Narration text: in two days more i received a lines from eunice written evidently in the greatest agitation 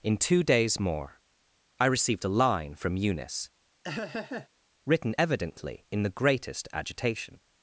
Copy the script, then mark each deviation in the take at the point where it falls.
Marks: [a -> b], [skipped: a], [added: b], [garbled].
in two days more i received a [lines -> line] from eunice written evidently in the greatest agitation